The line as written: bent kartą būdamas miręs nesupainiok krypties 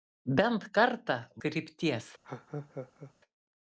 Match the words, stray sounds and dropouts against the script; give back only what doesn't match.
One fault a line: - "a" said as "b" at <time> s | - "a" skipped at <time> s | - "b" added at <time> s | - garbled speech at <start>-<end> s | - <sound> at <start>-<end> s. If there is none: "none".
- "būdamas miręs nesupainiok" skipped at 1.2 s
- laugh at 2.2-3.1 s